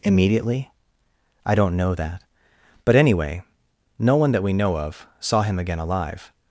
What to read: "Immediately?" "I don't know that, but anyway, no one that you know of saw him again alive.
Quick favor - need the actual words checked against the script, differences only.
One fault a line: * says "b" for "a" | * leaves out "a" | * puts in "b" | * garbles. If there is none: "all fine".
* says "we" for "you"